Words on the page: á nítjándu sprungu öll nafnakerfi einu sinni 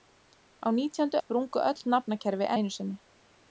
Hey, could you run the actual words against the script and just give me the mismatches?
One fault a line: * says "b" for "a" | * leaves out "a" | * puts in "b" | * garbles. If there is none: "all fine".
all fine